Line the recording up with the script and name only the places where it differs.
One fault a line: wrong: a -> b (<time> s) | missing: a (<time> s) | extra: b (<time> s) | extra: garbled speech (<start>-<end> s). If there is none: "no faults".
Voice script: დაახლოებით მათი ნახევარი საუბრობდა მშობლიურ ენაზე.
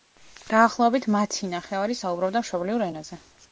no faults